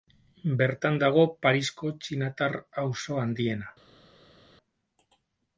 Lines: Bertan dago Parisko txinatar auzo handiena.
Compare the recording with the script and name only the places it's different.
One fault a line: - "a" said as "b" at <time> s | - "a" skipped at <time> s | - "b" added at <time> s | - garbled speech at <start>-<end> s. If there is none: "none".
none